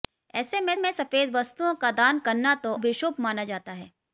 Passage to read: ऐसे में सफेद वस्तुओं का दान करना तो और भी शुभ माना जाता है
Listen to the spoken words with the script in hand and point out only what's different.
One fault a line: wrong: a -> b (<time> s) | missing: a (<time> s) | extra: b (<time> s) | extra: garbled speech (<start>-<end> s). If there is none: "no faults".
extra: में (0.8 s)
missing: और (2.7 s)